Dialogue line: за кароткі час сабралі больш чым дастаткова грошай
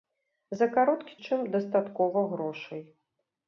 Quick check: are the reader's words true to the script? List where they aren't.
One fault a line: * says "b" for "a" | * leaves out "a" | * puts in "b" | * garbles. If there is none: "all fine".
* leaves out "час сабралі больш"